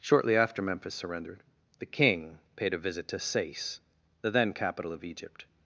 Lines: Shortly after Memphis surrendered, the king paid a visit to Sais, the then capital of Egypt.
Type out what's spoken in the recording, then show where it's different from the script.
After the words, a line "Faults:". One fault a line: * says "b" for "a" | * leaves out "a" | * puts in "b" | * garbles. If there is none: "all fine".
Shortly after Memphis surrendered, the king paid a visit to Sais, the then capital of Egypt.
Faults:
all fine